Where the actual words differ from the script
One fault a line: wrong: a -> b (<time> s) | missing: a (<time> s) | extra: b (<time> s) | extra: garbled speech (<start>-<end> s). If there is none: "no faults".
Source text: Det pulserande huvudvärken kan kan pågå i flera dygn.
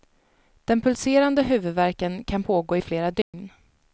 wrong: Det -> Den (0.7 s)
missing: kan (2.4 s)